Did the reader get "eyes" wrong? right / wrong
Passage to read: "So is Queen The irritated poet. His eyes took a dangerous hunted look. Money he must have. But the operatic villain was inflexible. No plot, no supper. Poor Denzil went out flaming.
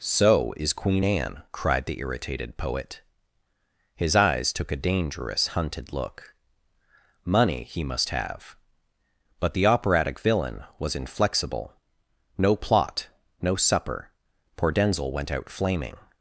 right